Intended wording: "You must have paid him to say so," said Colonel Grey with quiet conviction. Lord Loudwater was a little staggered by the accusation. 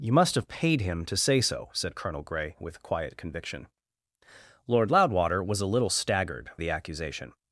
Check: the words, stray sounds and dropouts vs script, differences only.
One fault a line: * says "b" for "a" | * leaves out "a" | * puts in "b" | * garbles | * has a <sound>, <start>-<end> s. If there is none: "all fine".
* leaves out "by"